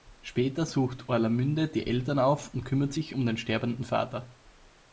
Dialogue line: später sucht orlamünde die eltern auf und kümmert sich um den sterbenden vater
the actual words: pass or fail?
pass